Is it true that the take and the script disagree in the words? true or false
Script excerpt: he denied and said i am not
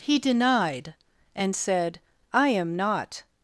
false